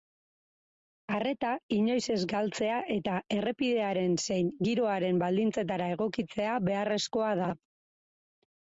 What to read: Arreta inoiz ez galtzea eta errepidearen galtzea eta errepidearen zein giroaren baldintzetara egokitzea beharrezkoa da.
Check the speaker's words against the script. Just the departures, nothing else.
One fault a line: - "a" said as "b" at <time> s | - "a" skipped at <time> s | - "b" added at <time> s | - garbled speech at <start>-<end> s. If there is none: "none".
- "galtzea eta errepidearen" skipped at 4.2 s